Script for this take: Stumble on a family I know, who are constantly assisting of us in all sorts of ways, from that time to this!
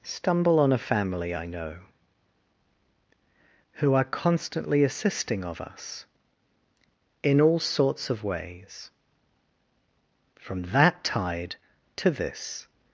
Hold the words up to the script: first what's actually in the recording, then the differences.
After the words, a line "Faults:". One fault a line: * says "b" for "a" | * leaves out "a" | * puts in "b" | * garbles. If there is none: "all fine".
Stumble on a family I know, who are constantly assisting of us in all sorts of ways, from that tide to this!
Faults:
* says "tide" for "time"